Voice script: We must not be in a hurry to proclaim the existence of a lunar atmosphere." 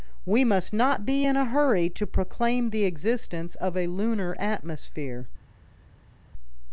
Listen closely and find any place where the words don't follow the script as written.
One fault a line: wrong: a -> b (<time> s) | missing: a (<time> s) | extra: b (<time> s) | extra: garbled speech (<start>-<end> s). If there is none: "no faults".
no faults